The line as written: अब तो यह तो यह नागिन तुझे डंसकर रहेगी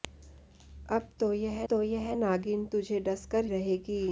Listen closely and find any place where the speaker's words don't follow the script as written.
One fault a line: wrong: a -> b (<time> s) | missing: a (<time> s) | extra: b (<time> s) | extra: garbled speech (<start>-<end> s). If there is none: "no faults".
no faults